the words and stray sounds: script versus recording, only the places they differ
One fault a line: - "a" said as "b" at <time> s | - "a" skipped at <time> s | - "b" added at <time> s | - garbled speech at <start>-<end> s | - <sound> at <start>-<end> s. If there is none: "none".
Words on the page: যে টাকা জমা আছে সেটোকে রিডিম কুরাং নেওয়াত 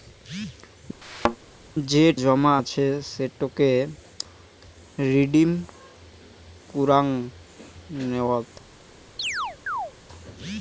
- thud at 1.0-1.4 s
- "টাকা" skipped at 2.0 s
- chirp at 9.2-9.9 s